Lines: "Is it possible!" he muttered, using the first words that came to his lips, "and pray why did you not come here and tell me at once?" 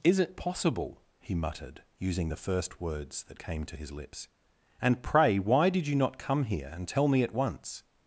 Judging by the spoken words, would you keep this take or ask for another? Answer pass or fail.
pass